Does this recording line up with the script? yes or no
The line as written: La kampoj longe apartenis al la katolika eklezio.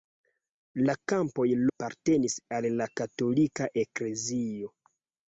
no